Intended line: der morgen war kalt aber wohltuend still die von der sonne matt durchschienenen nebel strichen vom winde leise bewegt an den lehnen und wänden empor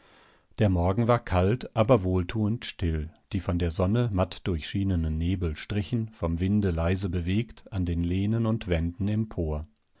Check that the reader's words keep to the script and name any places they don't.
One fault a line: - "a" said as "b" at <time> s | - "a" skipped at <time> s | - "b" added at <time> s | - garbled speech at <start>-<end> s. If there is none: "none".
none